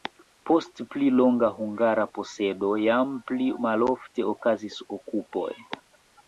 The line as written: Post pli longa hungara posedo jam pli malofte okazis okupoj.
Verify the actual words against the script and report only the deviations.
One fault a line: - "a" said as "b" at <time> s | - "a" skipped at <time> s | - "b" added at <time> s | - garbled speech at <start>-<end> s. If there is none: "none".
none